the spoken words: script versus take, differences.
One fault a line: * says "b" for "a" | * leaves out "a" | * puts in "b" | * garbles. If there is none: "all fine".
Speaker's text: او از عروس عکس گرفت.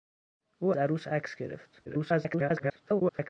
* leaves out "از"
* garbles